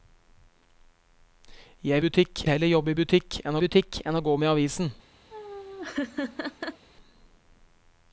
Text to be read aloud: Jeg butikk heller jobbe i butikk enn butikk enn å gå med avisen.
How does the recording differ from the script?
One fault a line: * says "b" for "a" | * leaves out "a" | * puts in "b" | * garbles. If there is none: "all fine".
all fine